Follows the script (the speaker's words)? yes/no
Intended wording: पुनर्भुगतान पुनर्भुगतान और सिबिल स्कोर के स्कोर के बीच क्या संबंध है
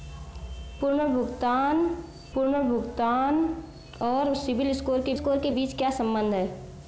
yes